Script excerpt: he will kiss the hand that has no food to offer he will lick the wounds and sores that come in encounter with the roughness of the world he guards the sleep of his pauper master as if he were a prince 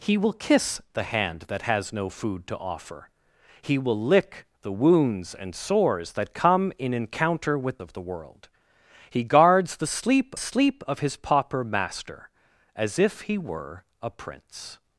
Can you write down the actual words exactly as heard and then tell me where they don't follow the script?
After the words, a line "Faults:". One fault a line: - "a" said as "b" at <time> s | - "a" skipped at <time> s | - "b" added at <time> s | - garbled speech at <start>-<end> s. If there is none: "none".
he will kiss the hand that has no food to offer he will lick the wounds and sores that come in encounter with of the world he guards the sleep sleep of his pauper master as if he were a prince
Faults:
- "the roughness" skipped at 7.8 s
- "sleep" added at 10.4 s